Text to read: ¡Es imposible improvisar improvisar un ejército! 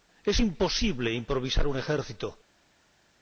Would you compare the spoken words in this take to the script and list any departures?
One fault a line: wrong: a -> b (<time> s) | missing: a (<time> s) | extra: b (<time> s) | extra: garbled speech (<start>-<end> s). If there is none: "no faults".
missing: improvisar (1.7 s)